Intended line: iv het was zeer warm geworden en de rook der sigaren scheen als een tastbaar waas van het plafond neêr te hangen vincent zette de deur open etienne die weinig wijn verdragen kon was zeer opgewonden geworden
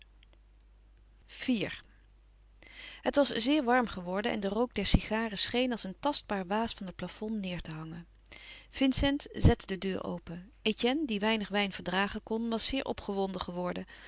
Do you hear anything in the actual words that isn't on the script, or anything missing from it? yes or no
no